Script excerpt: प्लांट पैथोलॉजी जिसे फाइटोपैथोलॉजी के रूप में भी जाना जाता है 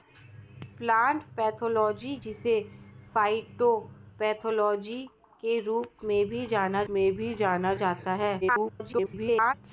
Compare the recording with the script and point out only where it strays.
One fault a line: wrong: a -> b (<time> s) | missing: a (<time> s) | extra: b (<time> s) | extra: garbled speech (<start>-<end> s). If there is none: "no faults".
extra: में भी जाना (6.9 s)
extra: garbled speech (8.4-9.5 s)